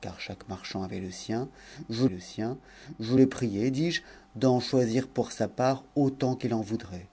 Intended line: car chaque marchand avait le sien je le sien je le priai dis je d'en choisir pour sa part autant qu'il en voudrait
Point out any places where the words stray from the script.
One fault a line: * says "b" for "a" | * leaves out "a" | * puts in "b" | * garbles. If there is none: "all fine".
all fine